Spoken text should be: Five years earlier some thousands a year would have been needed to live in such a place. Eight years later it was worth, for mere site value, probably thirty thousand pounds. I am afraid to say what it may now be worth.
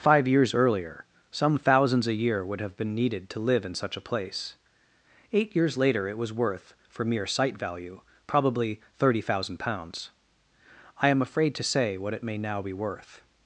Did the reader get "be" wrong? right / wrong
right